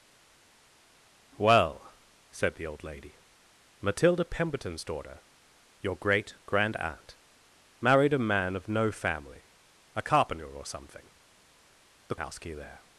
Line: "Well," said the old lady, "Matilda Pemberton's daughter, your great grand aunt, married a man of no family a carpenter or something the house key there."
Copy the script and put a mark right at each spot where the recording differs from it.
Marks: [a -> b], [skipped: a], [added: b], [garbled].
"Well," said the old lady, "Matilda Pemberton's daughter, your great grand aunt, married a man of no family a carpenter or something the house key there."